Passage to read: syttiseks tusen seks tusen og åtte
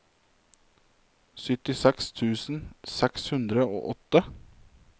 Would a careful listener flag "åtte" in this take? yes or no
no